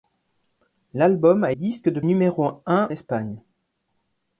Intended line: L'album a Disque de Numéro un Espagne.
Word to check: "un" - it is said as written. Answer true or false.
true